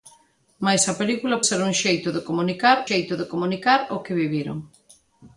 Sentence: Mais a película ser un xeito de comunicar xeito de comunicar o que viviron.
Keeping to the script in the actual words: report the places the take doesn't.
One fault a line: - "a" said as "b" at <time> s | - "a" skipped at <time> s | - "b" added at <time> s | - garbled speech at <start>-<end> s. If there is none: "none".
none